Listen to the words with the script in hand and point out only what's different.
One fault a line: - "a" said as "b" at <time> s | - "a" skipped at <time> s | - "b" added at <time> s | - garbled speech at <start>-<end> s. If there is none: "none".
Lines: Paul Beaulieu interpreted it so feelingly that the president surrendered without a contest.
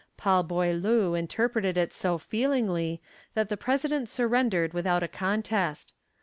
none